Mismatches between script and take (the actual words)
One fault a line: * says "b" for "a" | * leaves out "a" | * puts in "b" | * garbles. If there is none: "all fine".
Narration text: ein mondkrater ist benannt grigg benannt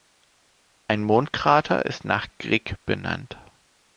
* says "nach" for "benannt"